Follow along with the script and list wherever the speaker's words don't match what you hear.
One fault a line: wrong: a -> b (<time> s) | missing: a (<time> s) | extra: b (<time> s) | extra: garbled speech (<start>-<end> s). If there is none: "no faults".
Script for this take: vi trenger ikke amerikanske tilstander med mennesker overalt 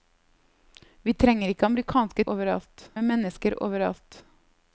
wrong: tilstander -> overalt (2.4 s)